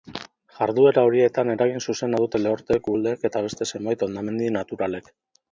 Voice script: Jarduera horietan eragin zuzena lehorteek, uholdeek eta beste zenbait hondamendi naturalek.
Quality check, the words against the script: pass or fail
fail